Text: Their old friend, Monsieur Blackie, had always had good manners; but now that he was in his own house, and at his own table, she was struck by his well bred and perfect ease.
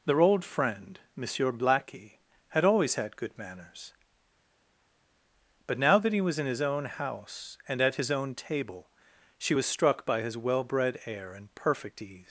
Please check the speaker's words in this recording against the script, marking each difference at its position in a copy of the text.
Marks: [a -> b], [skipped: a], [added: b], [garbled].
Their old friend, Monsieur Blackie, had always had good manners; but now that he was in his own house, and at his own table, she was struck by his well bred [added: air] and perfect ease.